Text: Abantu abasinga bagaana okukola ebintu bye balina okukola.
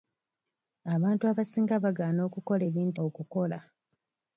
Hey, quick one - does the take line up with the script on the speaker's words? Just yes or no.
no